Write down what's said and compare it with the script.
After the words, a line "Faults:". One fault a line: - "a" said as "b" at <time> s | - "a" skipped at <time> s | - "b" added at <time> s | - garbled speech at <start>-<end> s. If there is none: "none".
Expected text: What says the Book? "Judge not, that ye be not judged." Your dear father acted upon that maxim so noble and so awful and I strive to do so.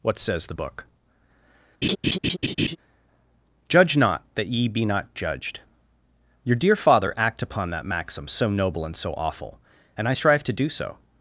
What says the Book? "Judge not, that ye be not judged." Your dear father act upon that maxim so noble and so awful and I strive to do so.
Faults:
- "acted" said as "act" at 7.2 s